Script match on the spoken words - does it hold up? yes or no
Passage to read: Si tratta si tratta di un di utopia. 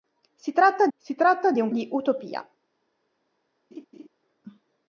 yes